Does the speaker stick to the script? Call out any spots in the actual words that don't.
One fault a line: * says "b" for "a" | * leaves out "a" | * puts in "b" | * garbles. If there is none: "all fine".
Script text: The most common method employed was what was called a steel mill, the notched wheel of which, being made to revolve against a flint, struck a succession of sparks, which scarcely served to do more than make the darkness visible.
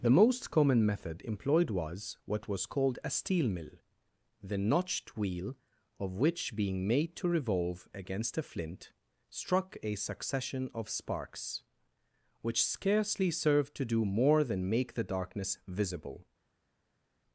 all fine